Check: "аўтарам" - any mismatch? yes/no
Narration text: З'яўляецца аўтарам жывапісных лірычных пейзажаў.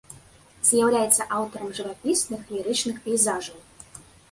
no